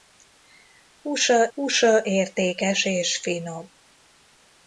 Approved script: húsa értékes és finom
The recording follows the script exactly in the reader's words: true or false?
false